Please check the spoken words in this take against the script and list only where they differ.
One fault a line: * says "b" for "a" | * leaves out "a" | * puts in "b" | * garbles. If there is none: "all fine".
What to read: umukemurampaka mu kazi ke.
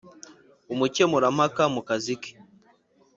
all fine